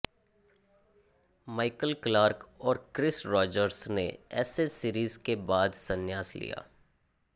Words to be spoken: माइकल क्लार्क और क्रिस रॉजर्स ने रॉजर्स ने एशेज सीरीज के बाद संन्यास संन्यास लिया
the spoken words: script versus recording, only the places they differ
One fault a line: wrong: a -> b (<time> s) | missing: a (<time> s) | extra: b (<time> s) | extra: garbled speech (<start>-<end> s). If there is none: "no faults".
missing: रॉजर्स ने (4.1 s)
missing: संन्यास (6.3 s)